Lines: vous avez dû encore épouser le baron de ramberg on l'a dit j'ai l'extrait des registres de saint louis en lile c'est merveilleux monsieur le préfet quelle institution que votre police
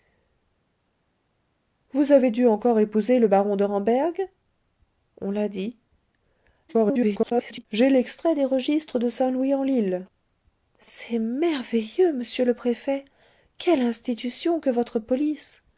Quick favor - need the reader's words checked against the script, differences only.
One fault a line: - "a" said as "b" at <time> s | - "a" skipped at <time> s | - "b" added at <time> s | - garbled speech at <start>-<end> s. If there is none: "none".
- garbled speech at 6.7-7.7 s